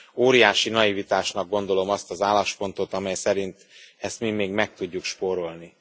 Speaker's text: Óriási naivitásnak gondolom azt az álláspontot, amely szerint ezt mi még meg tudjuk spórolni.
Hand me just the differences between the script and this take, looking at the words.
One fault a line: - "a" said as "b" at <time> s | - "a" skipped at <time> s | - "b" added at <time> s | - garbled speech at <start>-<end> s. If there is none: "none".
none